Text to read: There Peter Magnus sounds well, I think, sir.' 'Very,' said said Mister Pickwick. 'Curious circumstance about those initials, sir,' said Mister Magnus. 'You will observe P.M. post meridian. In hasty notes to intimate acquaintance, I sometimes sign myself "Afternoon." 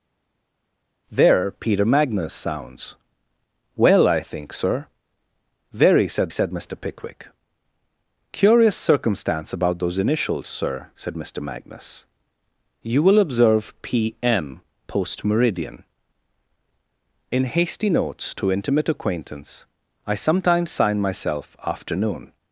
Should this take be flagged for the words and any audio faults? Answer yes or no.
no